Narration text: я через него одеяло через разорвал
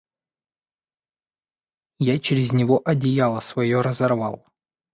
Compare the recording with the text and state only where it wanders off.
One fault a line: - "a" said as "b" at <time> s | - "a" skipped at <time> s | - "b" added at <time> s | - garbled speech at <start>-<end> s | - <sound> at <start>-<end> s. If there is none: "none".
- "через" said as "свое" at 3.4 s